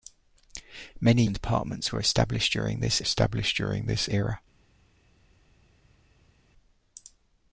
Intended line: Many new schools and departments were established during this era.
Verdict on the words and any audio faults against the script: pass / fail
fail